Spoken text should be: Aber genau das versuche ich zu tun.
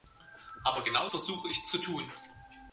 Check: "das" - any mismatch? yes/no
yes